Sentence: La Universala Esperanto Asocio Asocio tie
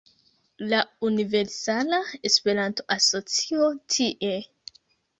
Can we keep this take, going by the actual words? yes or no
no